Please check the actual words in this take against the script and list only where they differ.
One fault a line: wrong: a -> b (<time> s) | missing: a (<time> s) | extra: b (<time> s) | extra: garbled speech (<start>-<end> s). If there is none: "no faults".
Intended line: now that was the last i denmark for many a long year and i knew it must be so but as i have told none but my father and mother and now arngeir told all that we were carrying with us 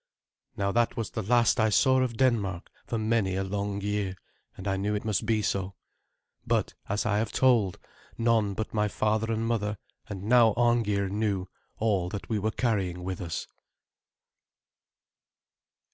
extra: saw of (1.7 s)
wrong: told -> knew (11.1 s)